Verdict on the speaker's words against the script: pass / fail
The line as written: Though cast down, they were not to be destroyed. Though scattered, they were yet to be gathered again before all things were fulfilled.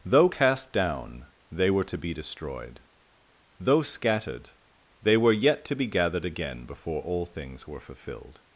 fail